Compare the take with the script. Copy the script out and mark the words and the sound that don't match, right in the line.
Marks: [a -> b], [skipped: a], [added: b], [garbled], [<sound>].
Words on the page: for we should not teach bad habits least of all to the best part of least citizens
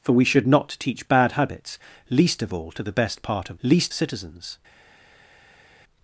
for we should not teach bad habits least of all to the best part of least citizens